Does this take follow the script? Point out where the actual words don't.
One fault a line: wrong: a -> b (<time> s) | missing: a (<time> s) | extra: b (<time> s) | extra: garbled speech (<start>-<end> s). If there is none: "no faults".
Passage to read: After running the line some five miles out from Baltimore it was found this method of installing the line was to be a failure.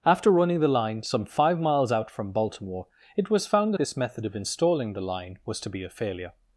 no faults